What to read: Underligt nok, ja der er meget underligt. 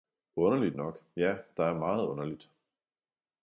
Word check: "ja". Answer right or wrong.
right